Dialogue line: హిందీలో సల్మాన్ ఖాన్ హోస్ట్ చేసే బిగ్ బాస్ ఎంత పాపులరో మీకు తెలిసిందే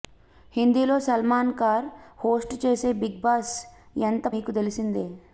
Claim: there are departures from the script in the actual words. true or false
true